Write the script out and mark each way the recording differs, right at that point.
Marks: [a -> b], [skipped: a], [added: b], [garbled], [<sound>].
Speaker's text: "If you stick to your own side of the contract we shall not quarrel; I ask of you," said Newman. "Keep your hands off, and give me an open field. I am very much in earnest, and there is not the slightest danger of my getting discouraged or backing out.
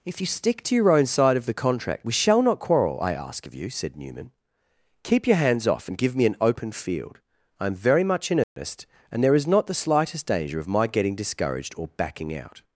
"If you stick to your own side of the contract we shall not quarrel; I ask of you," said Newman. "Keep your hands off, and give me an open field. I am very much in earnest, [dropout] and there is not the slightest danger of my getting discouraged or backing out.